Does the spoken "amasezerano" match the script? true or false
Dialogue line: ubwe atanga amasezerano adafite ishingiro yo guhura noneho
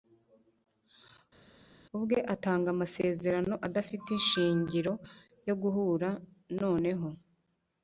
true